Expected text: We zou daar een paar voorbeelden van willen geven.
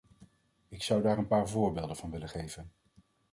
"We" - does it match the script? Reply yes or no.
no